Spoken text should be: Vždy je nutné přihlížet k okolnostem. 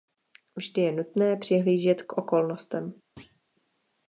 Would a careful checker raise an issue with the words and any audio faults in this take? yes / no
yes